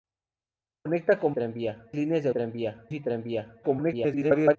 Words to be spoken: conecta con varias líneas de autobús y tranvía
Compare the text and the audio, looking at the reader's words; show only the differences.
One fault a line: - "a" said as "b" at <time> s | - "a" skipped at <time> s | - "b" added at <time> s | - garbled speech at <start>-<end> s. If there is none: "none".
- "varias" said as "tranvía" at 1.3 s
- "autobús" said as "tranvía" at 2.3 s
- garbled speech at 3.6-4.6 s